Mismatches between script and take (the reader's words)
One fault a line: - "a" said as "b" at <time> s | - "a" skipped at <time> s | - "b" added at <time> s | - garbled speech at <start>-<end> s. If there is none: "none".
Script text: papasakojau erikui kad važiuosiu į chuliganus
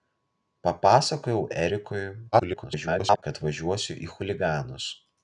- garbled speech at 2.3-3.2 s